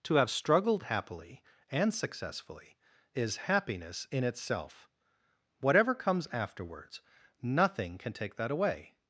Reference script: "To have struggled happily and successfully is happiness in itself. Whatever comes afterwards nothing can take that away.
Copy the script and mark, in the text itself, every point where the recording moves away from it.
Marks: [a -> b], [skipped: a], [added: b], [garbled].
"To have struggled happily and successfully is happiness in itself. Whatever comes afterwards nothing can take that away.